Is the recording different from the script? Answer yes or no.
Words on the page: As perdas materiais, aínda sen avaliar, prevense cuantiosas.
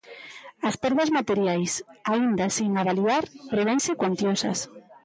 no